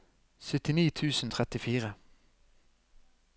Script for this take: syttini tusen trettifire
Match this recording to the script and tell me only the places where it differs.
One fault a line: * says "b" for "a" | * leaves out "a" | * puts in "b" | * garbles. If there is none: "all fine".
all fine